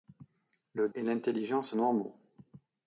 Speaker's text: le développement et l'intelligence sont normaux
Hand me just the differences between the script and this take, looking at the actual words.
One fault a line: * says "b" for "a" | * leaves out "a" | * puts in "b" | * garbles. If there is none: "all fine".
* leaves out "développement"
* leaves out "sont"